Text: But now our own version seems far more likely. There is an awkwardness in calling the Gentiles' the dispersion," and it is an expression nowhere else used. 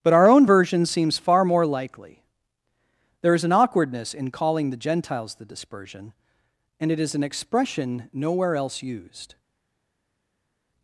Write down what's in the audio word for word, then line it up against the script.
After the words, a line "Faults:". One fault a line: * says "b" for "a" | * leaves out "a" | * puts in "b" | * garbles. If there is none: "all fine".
But our own version seems far more likely. There is an awkwardness in calling the Gentiles' the dispersion," and it is an expression nowhere else used.
Faults:
* leaves out "now"